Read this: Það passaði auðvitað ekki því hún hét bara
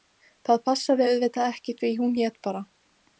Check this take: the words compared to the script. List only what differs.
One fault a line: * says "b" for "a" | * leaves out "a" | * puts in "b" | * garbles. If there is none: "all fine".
all fine